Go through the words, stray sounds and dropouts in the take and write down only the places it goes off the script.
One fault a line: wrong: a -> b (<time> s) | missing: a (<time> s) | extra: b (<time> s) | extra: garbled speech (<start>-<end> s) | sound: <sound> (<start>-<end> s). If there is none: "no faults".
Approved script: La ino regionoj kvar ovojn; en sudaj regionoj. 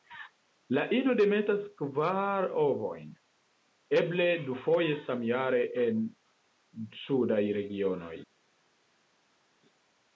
wrong: regionoj -> demetas (1.2 s)
extra: eble dufoje samjare (4.0 s)